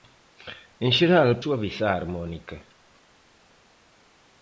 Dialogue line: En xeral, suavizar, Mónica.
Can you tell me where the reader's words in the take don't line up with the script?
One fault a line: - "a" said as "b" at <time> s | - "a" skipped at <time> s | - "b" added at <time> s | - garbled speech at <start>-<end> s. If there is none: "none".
none